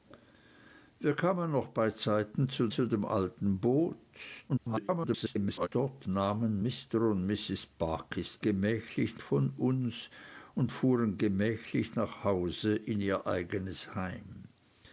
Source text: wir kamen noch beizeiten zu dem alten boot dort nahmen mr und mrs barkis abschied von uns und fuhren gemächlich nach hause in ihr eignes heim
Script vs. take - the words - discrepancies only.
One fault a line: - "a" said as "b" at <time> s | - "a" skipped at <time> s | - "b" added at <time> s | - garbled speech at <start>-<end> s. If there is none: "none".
- "zu" added at 2.7 s
- garbled speech at 4.5-5.7 s
- "abschied" said as "gemächlich" at 8.4 s